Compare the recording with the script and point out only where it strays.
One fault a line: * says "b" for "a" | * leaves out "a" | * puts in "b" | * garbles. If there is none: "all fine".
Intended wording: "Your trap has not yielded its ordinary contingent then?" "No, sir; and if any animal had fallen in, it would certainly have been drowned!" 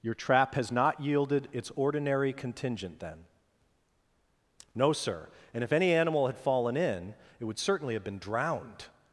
all fine